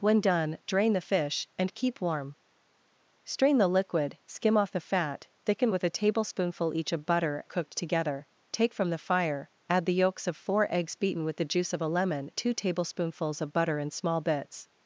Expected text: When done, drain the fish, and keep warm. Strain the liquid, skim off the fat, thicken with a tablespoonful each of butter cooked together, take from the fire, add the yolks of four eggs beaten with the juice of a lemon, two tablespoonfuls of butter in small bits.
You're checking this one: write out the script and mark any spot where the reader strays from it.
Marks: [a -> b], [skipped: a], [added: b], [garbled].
When done, drain the fish, and keep warm. Strain the liquid, skim off the fat, thicken with a tablespoonful each of butter cooked together, take from the fire, add the yolks of four eggs beaten with the juice of a lemon, two tablespoonfuls of butter in small bits.